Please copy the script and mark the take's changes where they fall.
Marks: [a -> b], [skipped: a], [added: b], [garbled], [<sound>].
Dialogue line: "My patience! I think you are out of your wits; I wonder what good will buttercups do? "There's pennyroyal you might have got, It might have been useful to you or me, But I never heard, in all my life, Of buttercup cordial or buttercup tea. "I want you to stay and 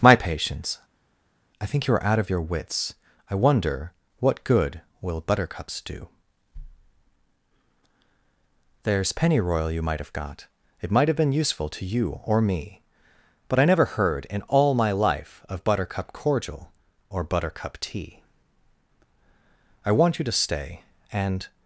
"My patience! I think you are out of your wits; I wonder what good will buttercups do? "There's pennyroyal you might have got, It might have been useful to you or me, But I never heard, in all my life, Of buttercup cordial or buttercup tea. "I want you to stay and